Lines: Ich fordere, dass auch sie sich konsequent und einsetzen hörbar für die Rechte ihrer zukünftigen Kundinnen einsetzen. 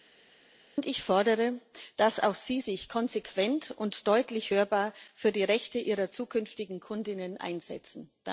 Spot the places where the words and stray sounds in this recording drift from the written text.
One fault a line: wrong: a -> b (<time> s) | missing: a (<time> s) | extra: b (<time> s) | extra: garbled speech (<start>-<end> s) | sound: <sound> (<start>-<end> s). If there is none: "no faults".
wrong: einsetzen -> deutlich (4.1 s)